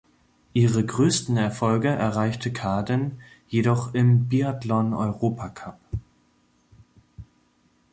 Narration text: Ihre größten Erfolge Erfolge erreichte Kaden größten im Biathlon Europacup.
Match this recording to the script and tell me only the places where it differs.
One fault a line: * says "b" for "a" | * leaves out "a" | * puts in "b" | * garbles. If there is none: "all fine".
* leaves out "Erfolge"
* says "jedoch" for "größten"